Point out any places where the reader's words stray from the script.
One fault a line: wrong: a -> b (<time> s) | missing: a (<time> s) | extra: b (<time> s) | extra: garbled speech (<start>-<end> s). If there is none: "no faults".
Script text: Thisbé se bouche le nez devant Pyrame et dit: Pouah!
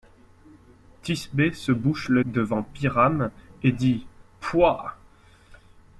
missing: nez (2.2 s)